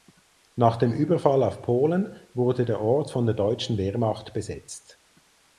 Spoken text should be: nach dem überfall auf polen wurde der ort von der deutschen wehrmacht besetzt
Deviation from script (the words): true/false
false